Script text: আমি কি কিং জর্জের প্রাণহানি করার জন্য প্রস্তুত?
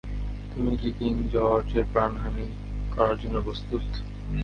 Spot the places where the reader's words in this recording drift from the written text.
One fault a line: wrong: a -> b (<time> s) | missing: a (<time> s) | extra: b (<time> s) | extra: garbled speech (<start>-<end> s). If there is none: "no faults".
wrong: আমি -> তুমি (0.5 s)